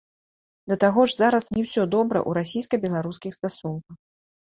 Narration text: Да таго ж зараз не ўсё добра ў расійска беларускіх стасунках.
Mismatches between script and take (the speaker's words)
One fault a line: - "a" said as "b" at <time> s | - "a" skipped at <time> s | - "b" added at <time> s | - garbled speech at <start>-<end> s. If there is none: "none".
none